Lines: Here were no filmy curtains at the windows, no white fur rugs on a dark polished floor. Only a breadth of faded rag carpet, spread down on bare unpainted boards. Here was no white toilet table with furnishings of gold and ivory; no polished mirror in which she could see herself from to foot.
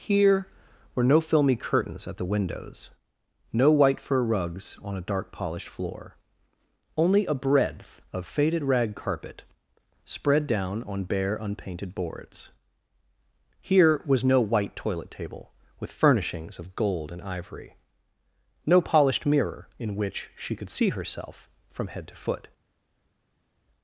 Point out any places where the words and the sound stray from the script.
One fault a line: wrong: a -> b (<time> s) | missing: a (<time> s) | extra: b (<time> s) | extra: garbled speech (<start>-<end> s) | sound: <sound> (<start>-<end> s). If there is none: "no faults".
extra: head (21.9 s)